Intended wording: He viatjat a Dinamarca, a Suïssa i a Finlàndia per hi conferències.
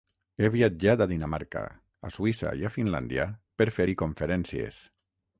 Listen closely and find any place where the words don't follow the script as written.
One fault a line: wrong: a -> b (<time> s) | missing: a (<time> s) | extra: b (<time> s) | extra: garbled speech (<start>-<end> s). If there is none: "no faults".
extra: fer (3.8 s)